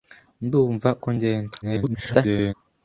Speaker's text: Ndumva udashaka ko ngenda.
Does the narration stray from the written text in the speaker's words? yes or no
yes